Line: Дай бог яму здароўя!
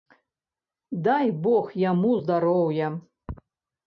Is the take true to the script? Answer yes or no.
yes